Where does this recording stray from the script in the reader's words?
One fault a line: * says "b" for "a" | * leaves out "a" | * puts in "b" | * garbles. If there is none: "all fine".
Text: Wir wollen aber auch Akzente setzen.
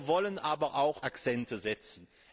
all fine